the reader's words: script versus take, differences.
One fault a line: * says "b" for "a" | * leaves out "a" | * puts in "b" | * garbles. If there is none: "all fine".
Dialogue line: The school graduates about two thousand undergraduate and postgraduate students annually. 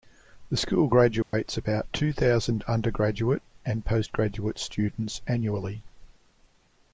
all fine